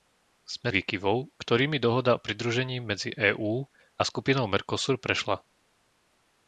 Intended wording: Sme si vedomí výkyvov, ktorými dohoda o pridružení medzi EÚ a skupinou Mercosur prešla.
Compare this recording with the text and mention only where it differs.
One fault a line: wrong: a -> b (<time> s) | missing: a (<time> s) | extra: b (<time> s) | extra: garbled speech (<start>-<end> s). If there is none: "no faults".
missing: si vedomí (0.7 s)